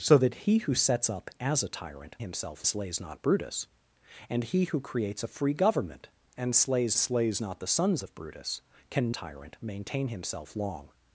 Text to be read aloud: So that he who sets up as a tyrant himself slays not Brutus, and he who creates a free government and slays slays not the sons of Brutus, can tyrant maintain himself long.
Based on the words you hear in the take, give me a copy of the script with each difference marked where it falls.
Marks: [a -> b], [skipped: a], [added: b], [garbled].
So that he who sets up as a tyrant himself slays not Brutus, and he who creates a free government and slays slays not the sons of Brutus, can tyrant maintain himself long.